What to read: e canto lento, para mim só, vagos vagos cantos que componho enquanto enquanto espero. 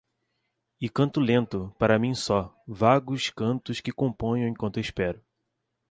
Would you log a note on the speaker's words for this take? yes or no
yes